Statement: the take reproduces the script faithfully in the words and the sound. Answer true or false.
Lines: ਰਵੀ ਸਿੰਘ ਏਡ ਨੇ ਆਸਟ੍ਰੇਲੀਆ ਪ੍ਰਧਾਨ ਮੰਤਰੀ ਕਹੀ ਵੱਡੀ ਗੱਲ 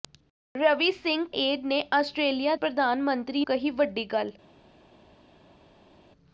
true